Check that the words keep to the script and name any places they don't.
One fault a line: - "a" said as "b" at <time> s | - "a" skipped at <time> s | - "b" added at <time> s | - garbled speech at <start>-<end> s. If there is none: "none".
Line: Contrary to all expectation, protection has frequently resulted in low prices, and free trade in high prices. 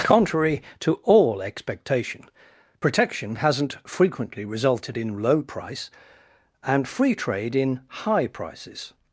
- "has" said as "hasn't" at 3.4 s
- "prices" said as "price" at 5.4 s